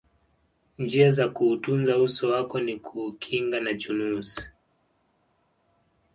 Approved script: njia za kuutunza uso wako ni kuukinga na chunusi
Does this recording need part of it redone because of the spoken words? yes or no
no